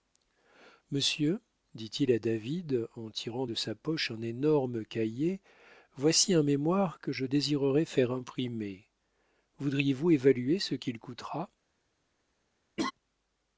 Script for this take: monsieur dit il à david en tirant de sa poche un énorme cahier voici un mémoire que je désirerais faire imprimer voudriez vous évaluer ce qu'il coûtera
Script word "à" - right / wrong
right